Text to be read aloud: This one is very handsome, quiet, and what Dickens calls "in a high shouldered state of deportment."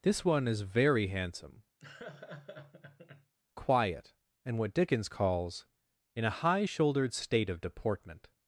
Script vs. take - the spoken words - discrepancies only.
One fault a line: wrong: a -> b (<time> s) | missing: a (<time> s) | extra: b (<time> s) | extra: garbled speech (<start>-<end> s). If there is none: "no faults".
no faults